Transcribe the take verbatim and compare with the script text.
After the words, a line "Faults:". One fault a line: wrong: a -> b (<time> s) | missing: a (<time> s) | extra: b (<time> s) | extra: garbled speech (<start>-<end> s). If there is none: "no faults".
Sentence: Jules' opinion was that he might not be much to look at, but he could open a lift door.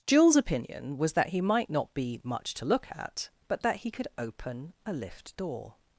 Jules' opinion was that he might not be much to look at, but that he could open a lift door.
Faults:
extra: that (3.6 s)